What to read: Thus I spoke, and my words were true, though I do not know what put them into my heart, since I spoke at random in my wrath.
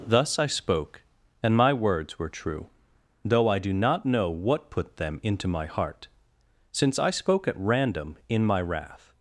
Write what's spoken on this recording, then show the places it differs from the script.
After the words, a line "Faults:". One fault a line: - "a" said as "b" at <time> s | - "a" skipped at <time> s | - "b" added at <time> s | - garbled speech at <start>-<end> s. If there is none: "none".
Thus I spoke, and my words were true, though I do not know what put them into my heart, since I spoke at random in my wrath.
Faults:
none